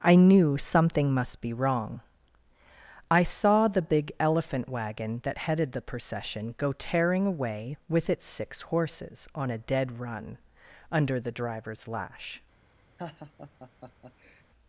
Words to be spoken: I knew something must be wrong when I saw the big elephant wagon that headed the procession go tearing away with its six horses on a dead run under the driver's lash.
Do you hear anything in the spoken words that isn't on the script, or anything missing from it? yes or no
yes